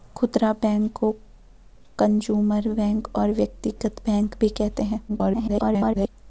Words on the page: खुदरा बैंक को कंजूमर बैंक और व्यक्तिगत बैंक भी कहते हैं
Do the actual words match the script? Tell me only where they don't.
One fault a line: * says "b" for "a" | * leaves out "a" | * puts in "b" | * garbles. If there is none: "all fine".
* garbles